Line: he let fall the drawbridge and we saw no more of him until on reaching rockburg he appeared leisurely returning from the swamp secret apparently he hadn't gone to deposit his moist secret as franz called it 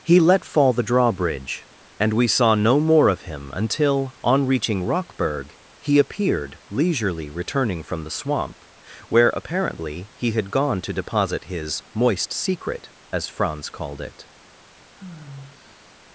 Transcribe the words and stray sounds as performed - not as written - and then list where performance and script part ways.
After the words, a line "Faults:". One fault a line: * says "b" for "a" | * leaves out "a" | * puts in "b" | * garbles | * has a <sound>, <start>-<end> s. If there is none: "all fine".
he let fall the drawbridge and we saw no more of him until on reaching rockburg he appeared leisurely returning from the swamp where apparently he had gone to deposit his moist secret as franz called it
Faults:
* says "where" for "secret"
* says "had" for "hadn't"
* has a sigh, 14.8-15.9 s